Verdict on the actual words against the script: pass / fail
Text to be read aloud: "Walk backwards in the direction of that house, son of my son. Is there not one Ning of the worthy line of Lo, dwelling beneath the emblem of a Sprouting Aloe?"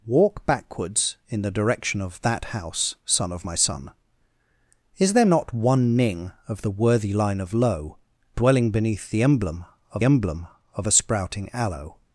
fail